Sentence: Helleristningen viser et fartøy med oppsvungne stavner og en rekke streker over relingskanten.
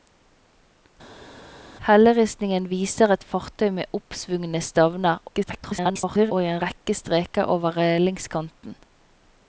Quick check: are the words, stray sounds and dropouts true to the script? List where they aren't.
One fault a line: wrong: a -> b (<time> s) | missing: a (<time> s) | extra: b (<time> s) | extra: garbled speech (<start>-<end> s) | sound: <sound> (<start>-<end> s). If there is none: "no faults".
extra: garbled speech (5.3-6.3 s)